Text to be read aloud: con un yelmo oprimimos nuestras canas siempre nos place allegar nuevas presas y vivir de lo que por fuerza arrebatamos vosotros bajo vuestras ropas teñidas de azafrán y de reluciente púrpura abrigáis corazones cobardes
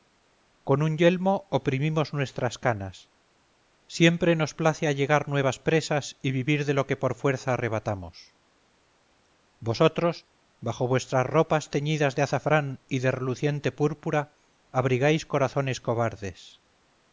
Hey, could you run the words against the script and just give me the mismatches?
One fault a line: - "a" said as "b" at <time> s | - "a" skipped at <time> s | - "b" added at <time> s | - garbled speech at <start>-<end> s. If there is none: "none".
none